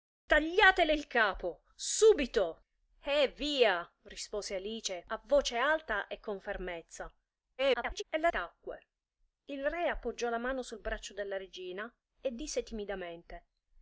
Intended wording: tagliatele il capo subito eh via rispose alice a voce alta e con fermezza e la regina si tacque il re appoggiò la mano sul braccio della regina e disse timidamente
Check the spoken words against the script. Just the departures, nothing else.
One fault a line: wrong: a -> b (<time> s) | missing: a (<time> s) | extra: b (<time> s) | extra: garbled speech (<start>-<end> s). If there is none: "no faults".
extra: garbled speech (7.6-8.0 s)
missing: regina si (8.3 s)